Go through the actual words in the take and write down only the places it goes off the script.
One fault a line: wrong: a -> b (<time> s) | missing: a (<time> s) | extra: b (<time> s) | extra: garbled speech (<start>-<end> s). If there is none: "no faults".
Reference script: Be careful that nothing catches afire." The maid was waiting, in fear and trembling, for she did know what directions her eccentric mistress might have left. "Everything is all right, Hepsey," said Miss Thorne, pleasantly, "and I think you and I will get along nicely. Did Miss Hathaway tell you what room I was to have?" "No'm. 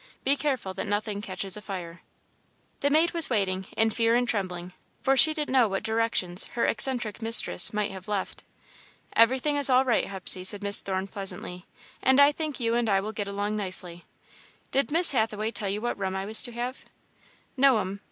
no faults